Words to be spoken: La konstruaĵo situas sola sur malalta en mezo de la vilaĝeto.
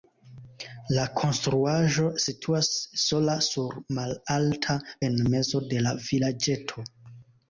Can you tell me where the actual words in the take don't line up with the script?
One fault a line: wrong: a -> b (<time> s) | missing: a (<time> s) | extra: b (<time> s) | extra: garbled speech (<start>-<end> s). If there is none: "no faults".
no faults